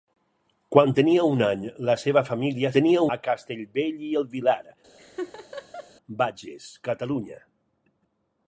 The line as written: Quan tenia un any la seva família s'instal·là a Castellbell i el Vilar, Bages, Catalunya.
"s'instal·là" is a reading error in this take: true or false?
true